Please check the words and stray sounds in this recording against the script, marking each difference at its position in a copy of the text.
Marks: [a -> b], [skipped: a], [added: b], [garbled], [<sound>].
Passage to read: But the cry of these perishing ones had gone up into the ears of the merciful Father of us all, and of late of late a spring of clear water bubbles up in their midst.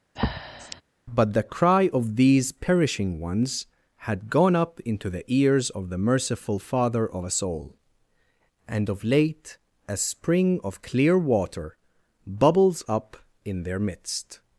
[breath] But the cry of these perishing ones had gone up into the ears of the merciful Father of us all, and of late [skipped: of late] a spring of clear water bubbles up in their midst.